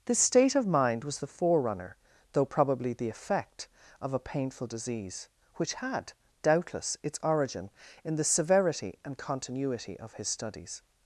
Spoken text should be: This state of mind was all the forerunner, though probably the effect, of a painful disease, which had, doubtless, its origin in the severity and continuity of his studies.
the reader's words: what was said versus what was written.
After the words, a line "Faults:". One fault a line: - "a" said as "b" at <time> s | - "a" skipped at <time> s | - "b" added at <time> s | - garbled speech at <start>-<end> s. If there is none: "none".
This state of mind was the forerunner, though probably the effect, of a painful disease, which had, doubtless, its origin in the severity and continuity of his studies.
Faults:
- "all" skipped at 1.2 s